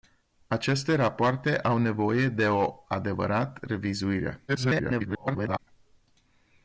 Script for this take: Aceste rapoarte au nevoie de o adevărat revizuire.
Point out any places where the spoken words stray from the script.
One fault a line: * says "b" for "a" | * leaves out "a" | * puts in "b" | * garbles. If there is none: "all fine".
* garbles